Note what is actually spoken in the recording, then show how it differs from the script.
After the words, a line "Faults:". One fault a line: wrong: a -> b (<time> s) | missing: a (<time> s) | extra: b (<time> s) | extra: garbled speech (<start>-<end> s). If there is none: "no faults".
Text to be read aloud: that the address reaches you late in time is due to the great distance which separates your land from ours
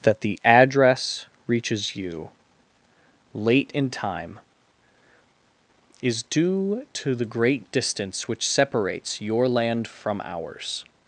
that the address reaches you late in time is due to the great distance which separates your land from ours
Faults:
no faults